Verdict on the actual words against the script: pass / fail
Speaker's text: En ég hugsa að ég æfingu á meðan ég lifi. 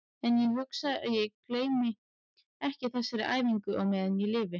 fail